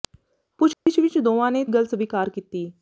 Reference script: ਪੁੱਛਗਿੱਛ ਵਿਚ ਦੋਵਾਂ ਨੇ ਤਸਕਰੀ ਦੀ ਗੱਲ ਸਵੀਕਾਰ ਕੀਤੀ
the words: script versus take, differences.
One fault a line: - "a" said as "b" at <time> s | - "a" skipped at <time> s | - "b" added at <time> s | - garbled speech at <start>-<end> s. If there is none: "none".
- "ਤਸਕਰੀ ਦੀ" skipped at 1.6 s